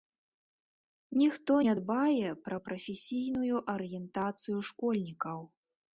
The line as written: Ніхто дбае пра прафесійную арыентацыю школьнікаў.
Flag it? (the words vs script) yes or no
yes